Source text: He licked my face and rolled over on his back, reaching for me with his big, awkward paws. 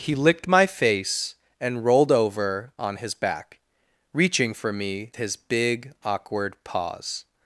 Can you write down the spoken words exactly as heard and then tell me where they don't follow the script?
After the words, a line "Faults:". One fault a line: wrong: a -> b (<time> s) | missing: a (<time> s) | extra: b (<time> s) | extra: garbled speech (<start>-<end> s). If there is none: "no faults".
He licked my face and rolled over on his back, reaching for me his big, awkward paws.
Faults:
missing: with (5.1 s)